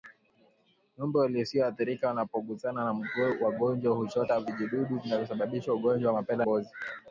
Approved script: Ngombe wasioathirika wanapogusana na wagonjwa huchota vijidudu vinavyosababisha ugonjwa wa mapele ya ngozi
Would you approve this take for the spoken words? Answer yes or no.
no